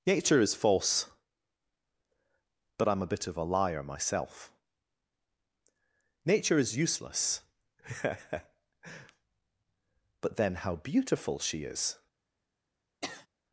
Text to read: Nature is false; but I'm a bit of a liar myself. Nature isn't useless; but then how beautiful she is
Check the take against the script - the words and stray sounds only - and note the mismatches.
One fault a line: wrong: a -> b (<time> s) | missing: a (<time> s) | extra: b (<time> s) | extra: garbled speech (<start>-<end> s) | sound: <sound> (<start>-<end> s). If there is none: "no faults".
wrong: isn't -> is (6.6 s)
sound: sniff (13.0-13.3 s)